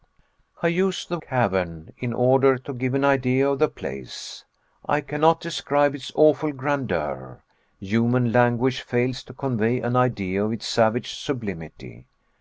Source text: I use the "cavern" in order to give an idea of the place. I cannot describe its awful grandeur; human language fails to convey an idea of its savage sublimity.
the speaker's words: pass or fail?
pass